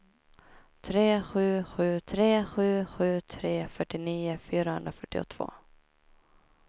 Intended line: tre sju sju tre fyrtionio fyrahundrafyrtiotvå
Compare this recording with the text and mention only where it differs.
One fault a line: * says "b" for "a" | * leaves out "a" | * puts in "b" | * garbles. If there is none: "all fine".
* puts in "sju sju tre"